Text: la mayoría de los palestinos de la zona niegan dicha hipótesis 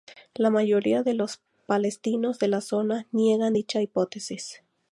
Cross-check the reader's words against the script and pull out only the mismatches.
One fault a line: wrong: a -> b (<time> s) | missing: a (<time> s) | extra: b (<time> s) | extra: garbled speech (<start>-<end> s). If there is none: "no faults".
no faults